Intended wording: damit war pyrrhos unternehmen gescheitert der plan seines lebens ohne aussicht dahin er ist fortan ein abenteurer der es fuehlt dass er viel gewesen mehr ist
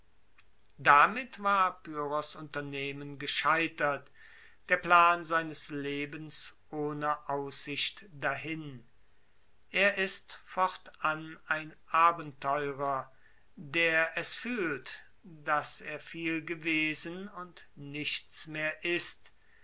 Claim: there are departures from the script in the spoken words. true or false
true